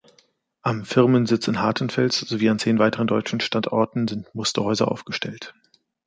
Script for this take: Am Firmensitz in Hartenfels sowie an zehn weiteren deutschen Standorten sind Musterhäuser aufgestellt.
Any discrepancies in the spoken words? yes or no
no